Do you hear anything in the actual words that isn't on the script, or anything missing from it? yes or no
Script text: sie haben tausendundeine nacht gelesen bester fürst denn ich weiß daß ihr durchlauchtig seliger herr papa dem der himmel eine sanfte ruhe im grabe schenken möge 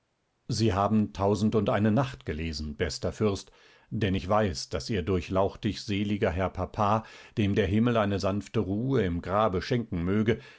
no